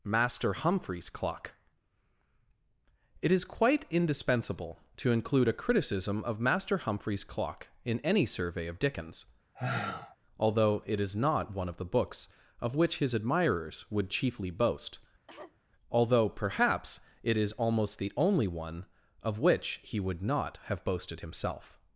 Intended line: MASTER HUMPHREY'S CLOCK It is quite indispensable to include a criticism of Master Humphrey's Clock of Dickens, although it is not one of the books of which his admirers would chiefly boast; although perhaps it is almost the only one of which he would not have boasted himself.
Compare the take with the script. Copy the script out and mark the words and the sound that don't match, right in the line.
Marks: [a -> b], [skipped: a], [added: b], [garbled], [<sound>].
MASTER HUMPHREY'S CLOCK It is quite indispensable to include a criticism of Master Humphrey's Clock [added: in any survey] of Dickens, [sigh] although it is not one of the books of which his admirers would chiefly boast; [cough] although perhaps it is almost the only one of which he would not have boasted himself.